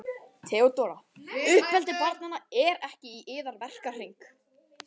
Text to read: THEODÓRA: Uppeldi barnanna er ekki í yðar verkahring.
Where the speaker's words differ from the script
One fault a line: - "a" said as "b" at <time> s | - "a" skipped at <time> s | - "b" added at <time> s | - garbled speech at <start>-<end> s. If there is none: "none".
none